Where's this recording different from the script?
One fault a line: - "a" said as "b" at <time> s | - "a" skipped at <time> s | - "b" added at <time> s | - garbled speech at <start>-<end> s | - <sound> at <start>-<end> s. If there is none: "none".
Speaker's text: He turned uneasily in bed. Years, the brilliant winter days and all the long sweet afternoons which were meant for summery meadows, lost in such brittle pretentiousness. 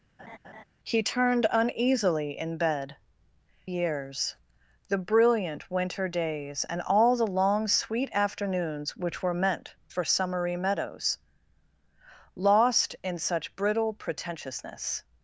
- laugh at 0.2-0.6 s